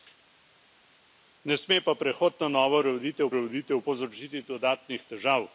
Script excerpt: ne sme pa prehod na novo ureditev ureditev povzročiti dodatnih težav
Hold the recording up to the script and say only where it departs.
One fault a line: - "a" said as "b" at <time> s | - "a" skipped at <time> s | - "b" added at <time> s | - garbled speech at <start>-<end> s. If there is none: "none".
none